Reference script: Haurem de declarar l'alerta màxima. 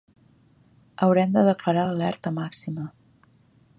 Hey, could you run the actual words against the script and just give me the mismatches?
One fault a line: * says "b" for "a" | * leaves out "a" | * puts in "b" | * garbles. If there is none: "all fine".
all fine